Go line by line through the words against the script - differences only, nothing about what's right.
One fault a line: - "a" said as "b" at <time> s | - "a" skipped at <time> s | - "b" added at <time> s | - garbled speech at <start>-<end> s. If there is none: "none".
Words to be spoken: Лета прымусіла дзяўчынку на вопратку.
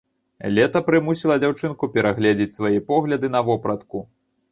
- "перагледзець свае погляды" added at 1.9 s